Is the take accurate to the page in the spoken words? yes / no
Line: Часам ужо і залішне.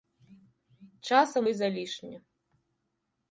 no